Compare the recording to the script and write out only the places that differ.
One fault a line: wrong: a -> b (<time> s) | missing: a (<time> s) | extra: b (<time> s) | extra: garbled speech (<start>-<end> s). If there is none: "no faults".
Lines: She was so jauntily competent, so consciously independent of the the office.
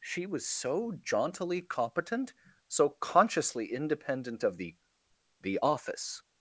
no faults